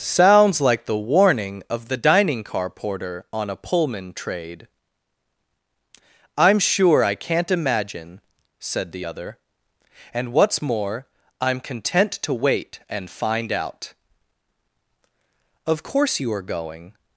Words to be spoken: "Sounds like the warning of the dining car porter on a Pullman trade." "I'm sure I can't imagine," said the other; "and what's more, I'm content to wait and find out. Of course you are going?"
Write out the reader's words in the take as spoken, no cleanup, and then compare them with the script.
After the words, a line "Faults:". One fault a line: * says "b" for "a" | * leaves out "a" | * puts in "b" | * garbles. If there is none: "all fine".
"Sounds like the warning of the dining car porter on a Pullman trade." "I'm sure I can't imagine," said the other; "and what's more, I'm content to wait and find out. Of course you are going?"
Faults:
all fine